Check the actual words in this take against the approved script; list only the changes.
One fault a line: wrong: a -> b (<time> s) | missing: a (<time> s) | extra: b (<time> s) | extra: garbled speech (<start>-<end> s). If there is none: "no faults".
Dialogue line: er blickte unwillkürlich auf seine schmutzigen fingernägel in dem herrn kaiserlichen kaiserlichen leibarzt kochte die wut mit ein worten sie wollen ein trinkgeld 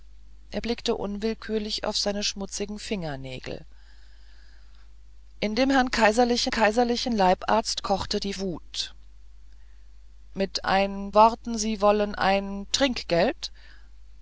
no faults